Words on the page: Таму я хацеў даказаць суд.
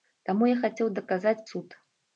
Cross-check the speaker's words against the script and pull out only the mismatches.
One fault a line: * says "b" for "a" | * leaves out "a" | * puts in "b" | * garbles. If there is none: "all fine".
all fine